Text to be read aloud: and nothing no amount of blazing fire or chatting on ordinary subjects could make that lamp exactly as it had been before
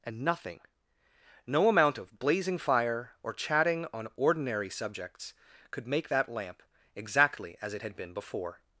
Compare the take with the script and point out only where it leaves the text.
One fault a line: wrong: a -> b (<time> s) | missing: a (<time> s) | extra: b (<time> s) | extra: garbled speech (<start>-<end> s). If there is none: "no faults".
no faults